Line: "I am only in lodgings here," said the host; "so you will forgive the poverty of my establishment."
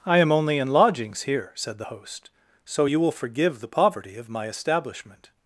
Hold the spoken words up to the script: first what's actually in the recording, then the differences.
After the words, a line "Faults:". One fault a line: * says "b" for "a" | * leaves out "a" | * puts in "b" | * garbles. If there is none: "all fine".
"I am only in lodgings here," said the host; "so you will forgive the poverty of my establishment."
Faults:
all fine